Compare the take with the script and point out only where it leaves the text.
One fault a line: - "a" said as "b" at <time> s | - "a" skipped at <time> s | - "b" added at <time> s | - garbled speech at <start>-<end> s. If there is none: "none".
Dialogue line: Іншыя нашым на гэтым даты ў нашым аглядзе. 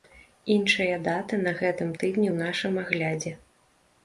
- "нашым" said as "даты" at 1.1 s
- "даты" said as "тыдні" at 2.0 s